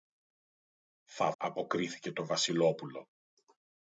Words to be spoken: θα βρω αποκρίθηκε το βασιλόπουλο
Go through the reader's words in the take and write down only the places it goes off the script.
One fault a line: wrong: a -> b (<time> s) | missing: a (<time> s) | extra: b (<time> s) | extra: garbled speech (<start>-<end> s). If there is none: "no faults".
missing: βρω (1.3 s)